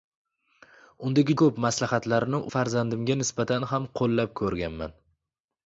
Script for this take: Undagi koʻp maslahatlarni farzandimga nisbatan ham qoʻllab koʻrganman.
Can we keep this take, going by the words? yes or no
yes